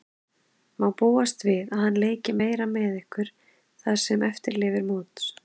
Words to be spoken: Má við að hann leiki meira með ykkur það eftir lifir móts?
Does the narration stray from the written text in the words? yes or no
yes